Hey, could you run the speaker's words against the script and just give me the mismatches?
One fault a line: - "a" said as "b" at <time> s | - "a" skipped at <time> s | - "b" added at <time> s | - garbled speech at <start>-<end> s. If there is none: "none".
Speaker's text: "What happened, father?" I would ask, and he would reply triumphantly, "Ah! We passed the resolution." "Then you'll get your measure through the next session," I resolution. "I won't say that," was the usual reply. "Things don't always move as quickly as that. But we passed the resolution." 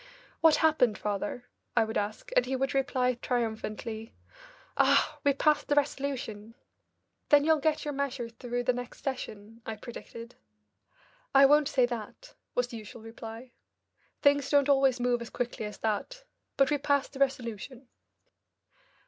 - "resolution" said as "predicted" at 9.8 s